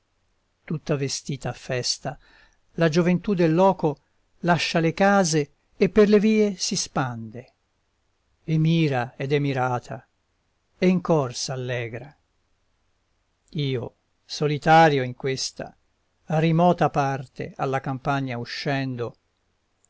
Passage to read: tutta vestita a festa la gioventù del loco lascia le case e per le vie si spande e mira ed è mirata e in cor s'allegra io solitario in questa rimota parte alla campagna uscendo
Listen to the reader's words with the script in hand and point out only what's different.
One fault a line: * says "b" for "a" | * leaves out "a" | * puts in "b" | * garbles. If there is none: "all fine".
all fine